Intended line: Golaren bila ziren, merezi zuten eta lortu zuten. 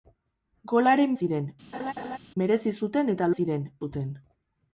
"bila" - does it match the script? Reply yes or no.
no